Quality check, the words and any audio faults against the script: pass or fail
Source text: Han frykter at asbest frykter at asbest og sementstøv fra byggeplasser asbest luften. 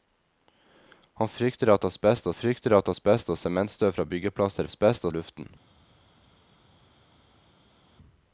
pass